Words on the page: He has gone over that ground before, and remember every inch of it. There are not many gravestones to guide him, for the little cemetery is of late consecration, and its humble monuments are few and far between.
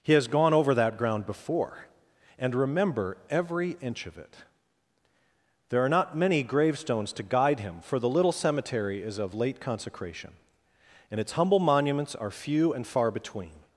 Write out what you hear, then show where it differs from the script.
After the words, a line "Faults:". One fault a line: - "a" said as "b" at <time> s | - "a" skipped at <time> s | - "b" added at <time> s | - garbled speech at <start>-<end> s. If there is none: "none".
He has gone over that ground before, and remember every inch of it. There are not many gravestones to guide him, for the little cemetery is of late consecration, and its humble monuments are few and far between.
Faults:
none